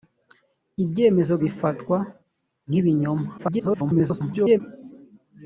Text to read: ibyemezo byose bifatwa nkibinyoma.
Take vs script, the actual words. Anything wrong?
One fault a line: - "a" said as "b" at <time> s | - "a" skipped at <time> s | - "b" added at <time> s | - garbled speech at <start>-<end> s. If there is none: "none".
- "byose" skipped at 1.3 s
- garbled speech at 3.4-4.6 s